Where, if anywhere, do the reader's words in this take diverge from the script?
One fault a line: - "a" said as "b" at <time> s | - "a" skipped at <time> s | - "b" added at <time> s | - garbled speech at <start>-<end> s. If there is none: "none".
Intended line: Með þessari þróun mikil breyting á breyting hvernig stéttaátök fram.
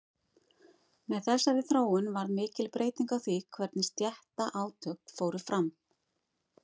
- "varð" added at 2.1 s
- "breyting" said as "því" at 3.3 s
- "fóru" added at 5.2 s